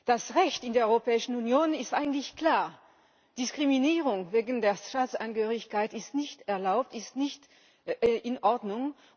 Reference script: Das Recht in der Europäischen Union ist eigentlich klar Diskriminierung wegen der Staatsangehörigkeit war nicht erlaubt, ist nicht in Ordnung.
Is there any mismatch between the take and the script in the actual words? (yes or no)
yes